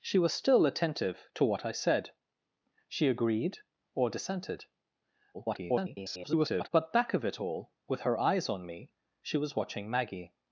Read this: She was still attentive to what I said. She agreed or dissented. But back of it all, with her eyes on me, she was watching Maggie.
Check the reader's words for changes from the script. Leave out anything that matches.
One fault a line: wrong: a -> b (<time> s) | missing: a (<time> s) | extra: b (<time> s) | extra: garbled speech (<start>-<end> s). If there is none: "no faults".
extra: garbled speech (5.3-6.7 s)